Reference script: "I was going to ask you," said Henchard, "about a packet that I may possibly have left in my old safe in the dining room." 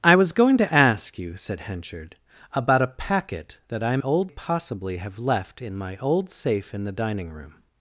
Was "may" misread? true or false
true